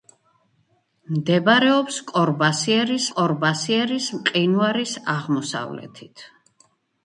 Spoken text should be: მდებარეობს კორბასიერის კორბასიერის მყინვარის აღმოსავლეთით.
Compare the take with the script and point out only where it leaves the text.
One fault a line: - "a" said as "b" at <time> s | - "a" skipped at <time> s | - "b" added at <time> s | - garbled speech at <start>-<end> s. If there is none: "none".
none